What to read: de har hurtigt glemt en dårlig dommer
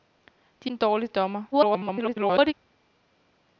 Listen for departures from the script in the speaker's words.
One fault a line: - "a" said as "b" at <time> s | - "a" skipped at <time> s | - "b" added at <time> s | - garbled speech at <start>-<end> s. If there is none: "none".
- "har hurtigt glemt" skipped at 0.7 s
- garbled speech at 1.5-2.5 s